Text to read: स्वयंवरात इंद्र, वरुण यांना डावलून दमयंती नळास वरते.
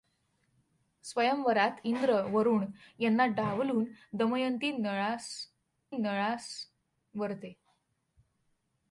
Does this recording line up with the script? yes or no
no